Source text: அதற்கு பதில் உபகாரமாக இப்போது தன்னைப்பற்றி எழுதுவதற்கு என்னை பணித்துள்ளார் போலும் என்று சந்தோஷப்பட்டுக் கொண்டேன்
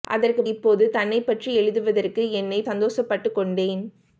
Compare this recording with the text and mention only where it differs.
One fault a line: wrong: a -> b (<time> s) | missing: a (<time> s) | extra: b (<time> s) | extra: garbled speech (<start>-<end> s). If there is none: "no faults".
missing: பதில் உபகாரமாக (0.4 s)
missing: பணித்துள்ளார் போலும் என்று (2.6 s)